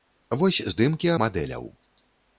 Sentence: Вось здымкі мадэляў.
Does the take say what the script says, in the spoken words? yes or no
yes